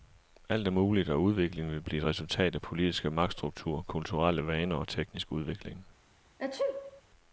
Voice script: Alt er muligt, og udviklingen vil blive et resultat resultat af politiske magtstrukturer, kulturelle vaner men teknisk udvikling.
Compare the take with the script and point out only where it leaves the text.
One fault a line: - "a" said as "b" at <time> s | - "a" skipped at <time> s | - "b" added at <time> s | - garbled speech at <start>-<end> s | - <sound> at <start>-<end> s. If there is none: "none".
- "resultat" skipped at 2.5 s
- "men" said as "og" at 4.7 s
- sneeze at 6.4-7.0 s